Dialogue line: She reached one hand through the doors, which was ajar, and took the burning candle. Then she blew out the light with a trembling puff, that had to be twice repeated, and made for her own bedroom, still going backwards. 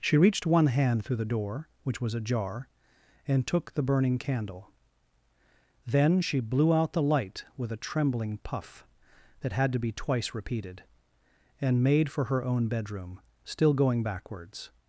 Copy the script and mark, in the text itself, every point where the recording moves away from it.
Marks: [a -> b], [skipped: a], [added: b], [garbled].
She reached one hand through the [doors, -> door] which was ajar, and took the burning candle. Then she blew out the light with a trembling puff, that had to be twice repeated, and made for her own bedroom, still going backwards.